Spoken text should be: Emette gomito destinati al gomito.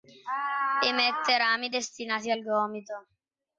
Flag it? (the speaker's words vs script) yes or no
yes